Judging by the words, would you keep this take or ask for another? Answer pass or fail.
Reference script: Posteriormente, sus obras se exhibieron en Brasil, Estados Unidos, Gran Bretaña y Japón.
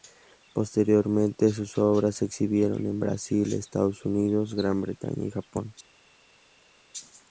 pass